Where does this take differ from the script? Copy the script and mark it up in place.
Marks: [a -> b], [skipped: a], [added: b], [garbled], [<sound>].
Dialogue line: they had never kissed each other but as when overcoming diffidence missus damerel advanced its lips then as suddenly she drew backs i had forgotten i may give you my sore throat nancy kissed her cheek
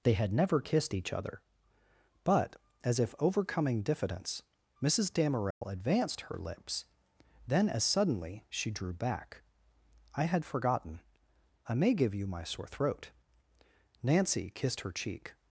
they had never kissed each other but as [when -> if] overcoming diffidence missus damerel [dropout] advanced [its -> her] lips then as suddenly she drew [backs -> back] i had forgotten i may give you my sore throat nancy kissed her cheek